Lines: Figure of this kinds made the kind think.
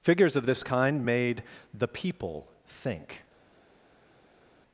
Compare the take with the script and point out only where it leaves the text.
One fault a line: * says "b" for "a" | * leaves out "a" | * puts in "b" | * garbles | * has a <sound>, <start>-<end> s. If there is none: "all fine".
* says "Figures" for "Figure"
* says "kind" for "kinds"
* says "people" for "kind"